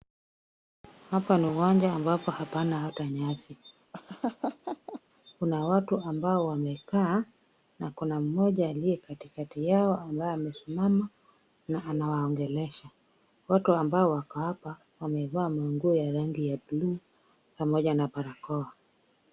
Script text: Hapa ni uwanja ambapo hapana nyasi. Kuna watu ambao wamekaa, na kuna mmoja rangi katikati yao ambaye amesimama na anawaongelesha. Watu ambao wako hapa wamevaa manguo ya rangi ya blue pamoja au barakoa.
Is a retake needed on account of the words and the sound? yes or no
yes